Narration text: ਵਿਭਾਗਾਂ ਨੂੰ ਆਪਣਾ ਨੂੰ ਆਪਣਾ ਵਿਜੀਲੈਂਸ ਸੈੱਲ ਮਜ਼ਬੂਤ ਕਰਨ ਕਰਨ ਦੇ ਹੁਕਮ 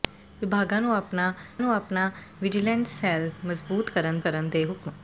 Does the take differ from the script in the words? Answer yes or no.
no